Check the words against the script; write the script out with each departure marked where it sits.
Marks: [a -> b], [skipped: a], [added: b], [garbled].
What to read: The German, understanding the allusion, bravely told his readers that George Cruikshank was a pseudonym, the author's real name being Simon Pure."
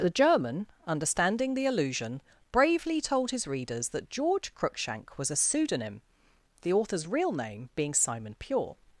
The German, understanding the allusion, bravely told his readers that George Cruikshank was a pseudonym, the author's real name being Simon Pure."